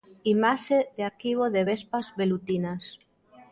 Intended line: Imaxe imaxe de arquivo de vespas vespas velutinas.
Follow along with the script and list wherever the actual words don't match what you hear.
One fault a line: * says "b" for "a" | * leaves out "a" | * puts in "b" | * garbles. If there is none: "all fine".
* leaves out "imaxe"
* leaves out "vespas"